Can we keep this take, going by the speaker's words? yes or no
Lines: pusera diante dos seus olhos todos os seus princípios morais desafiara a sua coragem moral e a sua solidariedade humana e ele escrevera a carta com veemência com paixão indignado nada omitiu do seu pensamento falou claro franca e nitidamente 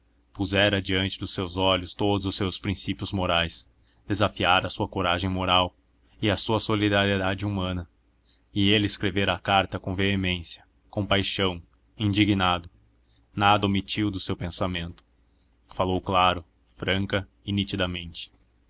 yes